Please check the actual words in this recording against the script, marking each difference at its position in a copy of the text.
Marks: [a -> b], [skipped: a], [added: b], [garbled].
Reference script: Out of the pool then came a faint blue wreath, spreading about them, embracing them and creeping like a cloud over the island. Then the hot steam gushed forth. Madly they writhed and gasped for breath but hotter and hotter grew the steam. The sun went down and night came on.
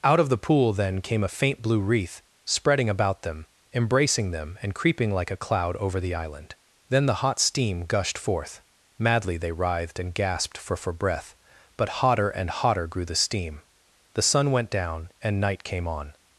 Out of the pool then came a faint blue wreath, spreading about them, embracing them and creeping like a cloud over the island. Then the hot steam gushed forth. Madly they writhed and gasped for [added: for] breath but hotter and hotter grew the steam. The sun went down and night came on.